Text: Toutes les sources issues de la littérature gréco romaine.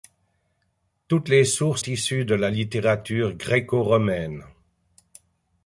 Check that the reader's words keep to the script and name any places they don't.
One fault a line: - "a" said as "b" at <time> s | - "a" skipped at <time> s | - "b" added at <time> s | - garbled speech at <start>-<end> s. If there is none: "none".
none